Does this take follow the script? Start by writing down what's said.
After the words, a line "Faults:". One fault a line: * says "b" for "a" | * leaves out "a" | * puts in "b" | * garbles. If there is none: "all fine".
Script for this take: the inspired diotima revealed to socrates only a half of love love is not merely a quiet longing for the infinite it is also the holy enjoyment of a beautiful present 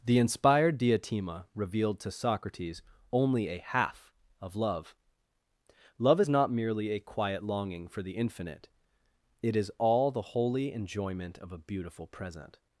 the inspired diotima revealed to socrates only a half of love love is not merely a quiet longing for the infinite it is all the holy enjoyment of a beautiful present
Faults:
* says "all" for "also"